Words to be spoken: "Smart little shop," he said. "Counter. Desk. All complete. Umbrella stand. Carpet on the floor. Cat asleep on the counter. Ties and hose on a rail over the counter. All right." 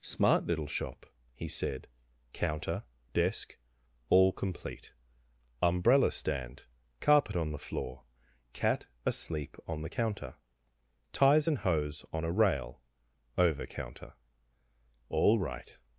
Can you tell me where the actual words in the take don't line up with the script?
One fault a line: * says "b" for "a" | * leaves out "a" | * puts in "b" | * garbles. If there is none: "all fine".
* leaves out "the"